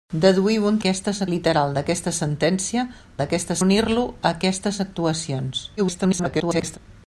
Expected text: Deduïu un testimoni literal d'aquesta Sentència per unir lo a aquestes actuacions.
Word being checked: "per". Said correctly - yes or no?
no